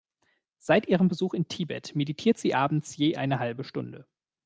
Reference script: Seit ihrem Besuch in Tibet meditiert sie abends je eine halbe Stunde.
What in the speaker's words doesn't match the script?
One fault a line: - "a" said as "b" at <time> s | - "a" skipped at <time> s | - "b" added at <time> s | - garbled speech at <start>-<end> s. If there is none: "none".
none